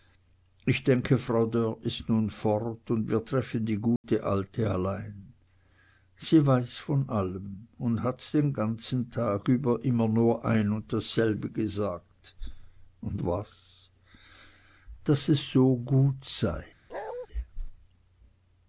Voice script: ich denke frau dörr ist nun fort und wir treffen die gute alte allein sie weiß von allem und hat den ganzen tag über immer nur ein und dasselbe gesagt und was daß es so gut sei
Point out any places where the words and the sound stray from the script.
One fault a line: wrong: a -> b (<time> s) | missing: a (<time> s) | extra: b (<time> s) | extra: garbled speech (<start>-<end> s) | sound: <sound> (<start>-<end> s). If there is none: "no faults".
sound: dropout (4.0-4.0 s)
sound: bark (16.9-17.3 s)